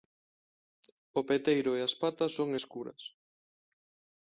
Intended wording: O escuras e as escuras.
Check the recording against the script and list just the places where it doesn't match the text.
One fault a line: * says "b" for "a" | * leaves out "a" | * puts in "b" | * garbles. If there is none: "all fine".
* says "peteiro" for "escuras"
* puts in "patas son"